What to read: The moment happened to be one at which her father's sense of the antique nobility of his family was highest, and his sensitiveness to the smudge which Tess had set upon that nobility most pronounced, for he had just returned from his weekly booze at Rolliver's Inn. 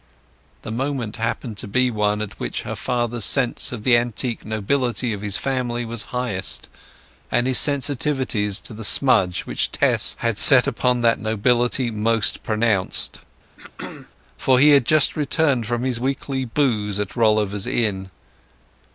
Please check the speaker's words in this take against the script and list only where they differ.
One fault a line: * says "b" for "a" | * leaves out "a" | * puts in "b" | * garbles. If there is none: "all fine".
all fine